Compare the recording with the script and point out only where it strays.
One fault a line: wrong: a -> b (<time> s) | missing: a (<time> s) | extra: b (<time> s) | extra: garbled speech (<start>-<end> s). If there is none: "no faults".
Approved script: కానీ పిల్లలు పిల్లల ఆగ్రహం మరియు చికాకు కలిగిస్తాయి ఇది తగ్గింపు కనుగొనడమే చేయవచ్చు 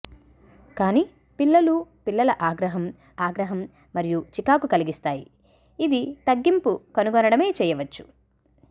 extra: ఆగ్రహం (3.2 s)